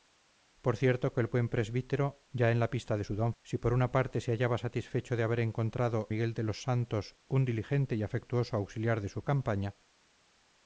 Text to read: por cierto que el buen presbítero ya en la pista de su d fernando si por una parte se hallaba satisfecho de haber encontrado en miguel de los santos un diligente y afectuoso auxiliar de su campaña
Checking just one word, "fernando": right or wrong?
wrong